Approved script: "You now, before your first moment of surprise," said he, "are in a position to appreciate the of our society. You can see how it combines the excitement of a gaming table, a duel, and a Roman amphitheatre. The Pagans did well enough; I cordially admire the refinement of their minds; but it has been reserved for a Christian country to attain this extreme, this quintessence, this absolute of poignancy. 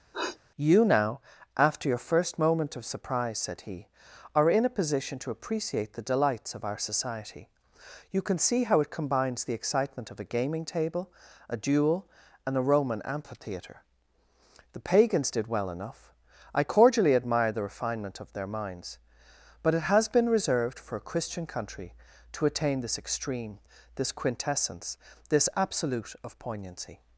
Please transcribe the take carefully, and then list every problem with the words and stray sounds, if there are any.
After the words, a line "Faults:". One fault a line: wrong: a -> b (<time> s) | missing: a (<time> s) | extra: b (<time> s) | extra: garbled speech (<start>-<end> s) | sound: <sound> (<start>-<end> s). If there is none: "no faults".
"You now, after your first moment of surprise," said he, "are in a position to appreciate the delights of our society. You can see how it combines the excitement of a gaming table, a duel, and a Roman amphitheatre. The Pagans did well enough; I cordially admire the refinement of their minds; but it has been reserved for a Christian country to attain this extreme, this quintessence, this absolute of poignancy.
Faults:
sound: sniff (0.1-0.4 s)
wrong: before -> after (1.6 s)
extra: delights (6.1 s)